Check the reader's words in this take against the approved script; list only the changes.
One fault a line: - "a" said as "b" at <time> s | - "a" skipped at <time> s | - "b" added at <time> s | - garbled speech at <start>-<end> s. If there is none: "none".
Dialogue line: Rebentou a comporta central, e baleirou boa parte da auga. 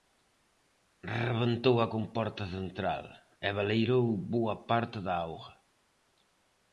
none